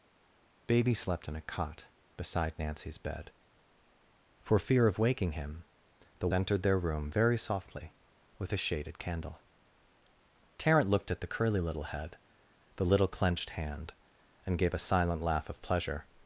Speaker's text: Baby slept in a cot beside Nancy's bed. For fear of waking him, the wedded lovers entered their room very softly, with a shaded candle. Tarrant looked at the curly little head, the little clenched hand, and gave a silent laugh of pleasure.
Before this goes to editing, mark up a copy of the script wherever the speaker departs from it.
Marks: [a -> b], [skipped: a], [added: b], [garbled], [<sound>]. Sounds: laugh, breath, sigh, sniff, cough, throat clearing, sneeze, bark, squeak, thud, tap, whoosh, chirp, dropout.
Baby slept in a cot beside Nancy's bed. For fear of waking him, the [skipped: wedded lovers] entered their room very softly, with a shaded candle. Tarrant looked at the curly little head, the little clenched hand, and gave a silent laugh of pleasure.